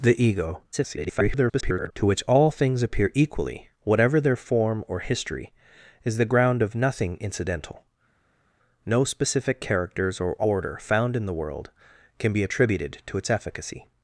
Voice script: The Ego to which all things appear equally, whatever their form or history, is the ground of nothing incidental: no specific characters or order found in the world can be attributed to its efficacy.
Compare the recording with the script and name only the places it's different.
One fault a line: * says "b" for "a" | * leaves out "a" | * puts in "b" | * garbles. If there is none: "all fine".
* garbles